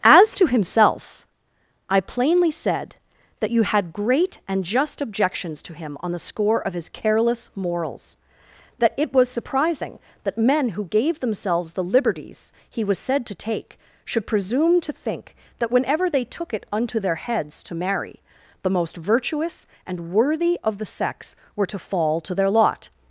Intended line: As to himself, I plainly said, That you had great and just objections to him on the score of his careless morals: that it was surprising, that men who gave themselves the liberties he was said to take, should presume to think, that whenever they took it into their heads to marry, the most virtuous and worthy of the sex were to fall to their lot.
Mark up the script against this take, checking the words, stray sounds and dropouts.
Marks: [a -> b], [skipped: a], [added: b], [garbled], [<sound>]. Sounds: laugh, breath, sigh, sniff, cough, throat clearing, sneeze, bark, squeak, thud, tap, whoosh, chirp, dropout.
As to himself, I plainly said, That you had great and just objections to him on the score of his careless morals: that it was surprising, that men who gave themselves the liberties he was said to take, should presume to think, that whenever they took it [into -> unto] their heads to marry, the most virtuous and worthy of the sex were to fall to their lot.